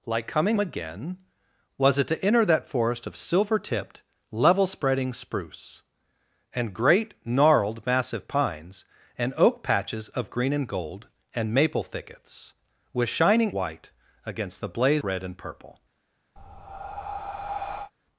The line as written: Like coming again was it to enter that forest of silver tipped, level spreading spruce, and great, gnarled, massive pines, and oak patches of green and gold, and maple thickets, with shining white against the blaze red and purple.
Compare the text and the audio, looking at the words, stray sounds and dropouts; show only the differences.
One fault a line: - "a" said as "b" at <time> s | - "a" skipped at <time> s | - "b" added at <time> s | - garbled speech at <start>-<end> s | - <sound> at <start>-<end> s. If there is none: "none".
- breath at 16.4-17.9 s